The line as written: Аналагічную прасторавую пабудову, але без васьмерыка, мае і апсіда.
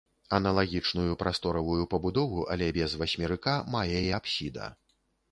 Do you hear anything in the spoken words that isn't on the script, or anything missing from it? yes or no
no